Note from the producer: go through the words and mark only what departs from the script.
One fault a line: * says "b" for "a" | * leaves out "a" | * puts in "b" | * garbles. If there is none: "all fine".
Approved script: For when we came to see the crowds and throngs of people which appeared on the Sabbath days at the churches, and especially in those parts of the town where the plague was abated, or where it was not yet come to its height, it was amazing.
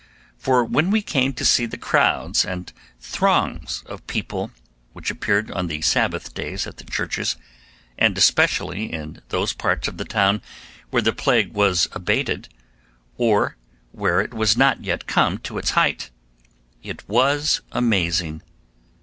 all fine